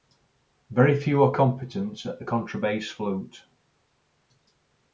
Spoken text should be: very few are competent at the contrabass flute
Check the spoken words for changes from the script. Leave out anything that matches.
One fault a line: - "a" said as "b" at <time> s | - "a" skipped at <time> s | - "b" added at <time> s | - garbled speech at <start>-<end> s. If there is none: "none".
none